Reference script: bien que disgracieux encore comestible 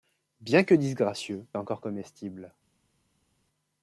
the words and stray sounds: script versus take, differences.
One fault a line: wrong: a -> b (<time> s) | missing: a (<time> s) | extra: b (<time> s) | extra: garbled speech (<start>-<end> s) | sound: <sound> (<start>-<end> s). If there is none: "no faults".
no faults